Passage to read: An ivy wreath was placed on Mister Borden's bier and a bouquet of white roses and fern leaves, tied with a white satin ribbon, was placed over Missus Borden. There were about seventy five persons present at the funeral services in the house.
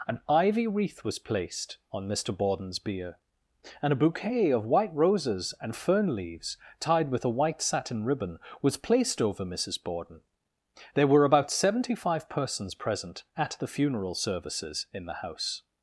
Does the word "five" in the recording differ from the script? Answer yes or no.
no